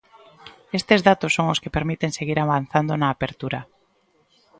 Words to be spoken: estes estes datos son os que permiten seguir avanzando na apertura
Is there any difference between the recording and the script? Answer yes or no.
yes